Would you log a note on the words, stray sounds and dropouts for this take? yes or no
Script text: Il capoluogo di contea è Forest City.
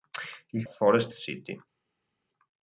yes